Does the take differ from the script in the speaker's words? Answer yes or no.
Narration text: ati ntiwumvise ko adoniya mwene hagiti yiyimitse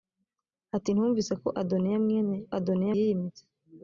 yes